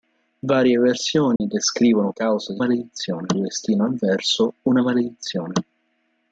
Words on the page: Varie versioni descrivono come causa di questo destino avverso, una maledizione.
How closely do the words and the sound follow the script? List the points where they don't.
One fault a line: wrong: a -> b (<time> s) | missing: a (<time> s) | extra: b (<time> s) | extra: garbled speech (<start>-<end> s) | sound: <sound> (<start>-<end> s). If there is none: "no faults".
sound: dropout (1.4-1.4 s)
missing: come (2.1 s)
wrong: questo -> maledizione (2.6 s)